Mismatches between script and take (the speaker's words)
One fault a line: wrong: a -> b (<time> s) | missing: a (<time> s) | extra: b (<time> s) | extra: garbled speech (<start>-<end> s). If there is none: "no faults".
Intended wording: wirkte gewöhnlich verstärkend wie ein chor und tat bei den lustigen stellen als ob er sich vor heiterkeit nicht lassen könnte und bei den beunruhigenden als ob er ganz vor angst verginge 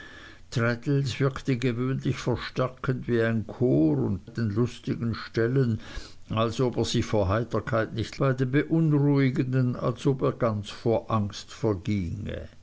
missing: tat bei (4.3 s)
missing: lassen könnte und (8.2 s)